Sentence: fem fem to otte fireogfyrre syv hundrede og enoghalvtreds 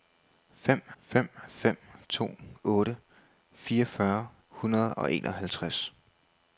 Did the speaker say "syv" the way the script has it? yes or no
no